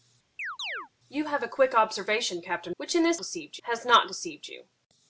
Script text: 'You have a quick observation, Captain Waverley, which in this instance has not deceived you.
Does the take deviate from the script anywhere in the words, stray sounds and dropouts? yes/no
yes